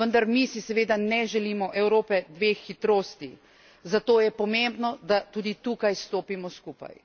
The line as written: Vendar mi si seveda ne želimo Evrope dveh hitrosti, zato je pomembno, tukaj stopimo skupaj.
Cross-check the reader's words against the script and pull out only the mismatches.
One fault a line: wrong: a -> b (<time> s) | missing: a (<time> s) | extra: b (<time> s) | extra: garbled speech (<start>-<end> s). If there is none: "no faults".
extra: da tudi (5.0 s)